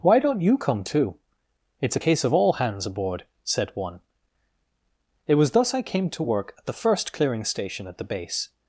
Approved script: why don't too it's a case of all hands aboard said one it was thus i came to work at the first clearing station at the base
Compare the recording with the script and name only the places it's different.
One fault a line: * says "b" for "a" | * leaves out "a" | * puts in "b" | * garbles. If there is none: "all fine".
* puts in "you come"